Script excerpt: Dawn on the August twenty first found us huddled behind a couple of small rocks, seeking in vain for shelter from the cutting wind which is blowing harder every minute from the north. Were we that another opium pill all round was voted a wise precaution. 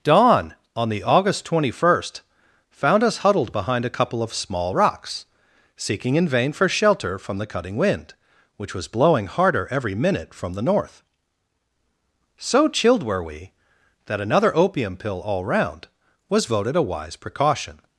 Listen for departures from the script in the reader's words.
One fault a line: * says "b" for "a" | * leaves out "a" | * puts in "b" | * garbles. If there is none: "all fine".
* says "was" for "is"
* puts in "So chilled"